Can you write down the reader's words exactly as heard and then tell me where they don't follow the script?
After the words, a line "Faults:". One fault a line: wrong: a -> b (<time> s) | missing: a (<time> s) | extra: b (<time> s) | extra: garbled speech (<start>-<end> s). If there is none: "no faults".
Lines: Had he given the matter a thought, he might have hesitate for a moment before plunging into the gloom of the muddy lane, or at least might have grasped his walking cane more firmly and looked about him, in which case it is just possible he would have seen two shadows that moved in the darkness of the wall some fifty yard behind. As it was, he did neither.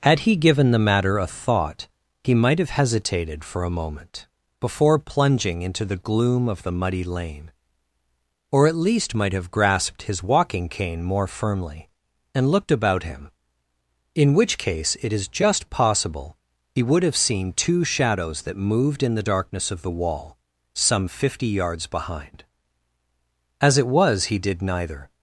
Had he given the matter a thought, he might have hesitated for a moment before plunging into the gloom of the muddy lane, or at least might have grasped his walking cane more firmly and looked about him, in which case it is just possible he would have seen two shadows that moved in the darkness of the wall some fifty yards behind. As it was, he did neither.
Faults:
wrong: hesitate -> hesitated (2.7 s)
wrong: yard -> yards (21.5 s)